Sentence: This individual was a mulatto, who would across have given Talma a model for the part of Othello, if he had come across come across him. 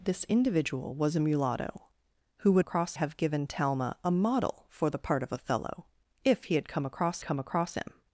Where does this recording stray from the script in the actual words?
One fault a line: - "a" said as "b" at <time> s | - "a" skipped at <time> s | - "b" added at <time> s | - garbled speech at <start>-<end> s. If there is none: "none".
none